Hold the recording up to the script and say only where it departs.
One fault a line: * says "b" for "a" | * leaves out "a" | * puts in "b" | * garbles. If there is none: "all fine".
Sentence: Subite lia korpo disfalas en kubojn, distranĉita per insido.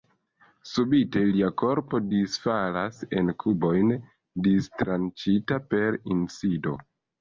all fine